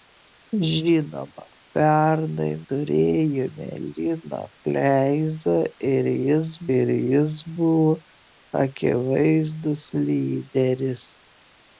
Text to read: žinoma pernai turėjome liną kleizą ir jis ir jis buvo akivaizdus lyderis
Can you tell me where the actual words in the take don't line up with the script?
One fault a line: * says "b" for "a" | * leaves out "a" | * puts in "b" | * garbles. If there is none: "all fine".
all fine